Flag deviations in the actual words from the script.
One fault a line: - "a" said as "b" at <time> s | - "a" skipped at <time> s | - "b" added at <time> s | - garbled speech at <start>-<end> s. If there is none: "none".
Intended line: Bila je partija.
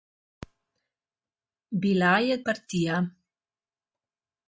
none